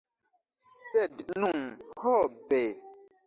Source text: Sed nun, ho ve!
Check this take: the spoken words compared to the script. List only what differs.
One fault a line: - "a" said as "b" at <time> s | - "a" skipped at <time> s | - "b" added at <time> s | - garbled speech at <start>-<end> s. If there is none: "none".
none